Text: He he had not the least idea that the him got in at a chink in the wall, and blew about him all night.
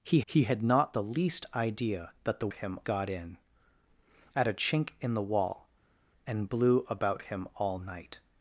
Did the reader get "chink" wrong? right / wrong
right